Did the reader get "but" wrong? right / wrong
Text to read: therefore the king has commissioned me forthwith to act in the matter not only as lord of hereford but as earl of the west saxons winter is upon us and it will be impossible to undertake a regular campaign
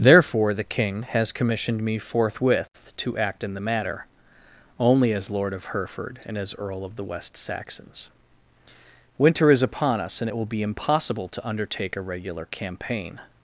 wrong